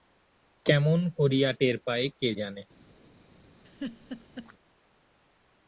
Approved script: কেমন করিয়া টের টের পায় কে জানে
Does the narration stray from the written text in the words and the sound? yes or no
yes